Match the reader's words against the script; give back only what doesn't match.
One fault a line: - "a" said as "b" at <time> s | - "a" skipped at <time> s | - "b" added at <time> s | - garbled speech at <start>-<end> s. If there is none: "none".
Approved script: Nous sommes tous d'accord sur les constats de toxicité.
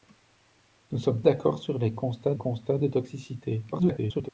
- "tous" skipped at 1.2 s
- "constats" added at 2.4 s
- garbled speech at 3.7-4.3 s